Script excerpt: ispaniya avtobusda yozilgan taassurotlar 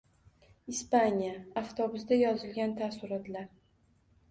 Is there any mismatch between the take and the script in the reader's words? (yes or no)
no